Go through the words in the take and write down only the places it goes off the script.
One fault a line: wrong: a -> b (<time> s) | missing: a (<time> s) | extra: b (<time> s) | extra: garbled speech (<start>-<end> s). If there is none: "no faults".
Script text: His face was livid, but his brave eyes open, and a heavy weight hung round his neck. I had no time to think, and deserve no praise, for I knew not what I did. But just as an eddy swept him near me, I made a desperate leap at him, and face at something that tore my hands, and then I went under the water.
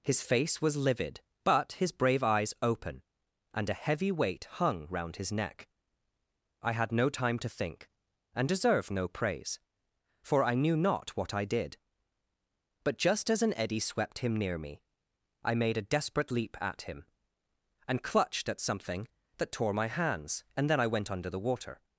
wrong: face -> clutched (18.0 s)